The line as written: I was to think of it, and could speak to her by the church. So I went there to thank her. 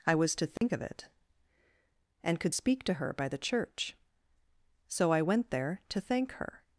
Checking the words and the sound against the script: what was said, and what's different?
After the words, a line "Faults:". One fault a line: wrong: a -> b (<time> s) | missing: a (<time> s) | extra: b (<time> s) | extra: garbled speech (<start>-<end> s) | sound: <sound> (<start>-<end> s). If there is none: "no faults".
I was to think of it, and could speak to her by the church. So I went there to thank her.
Faults:
sound: dropout (0.6-0.6 s)